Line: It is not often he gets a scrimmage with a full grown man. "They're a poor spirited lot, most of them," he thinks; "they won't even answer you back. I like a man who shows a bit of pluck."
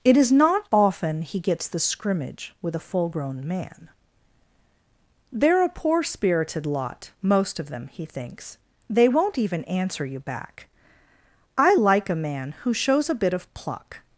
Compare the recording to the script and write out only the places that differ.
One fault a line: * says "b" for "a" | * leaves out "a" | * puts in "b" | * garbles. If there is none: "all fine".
* says "the" for "a"